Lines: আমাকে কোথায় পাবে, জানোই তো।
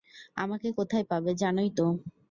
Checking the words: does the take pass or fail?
pass